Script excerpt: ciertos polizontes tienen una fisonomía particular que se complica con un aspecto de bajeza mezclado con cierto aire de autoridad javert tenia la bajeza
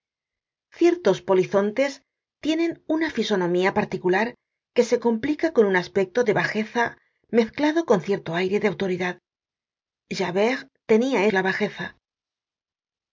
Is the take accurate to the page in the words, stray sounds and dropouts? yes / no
yes